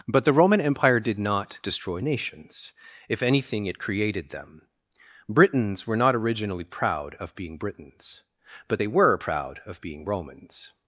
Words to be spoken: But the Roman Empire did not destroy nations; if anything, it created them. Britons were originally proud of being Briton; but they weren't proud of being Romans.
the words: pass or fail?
fail